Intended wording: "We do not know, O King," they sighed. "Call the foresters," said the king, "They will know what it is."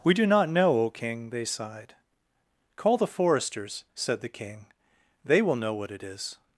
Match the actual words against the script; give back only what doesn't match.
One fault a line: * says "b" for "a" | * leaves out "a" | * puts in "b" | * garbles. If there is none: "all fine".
all fine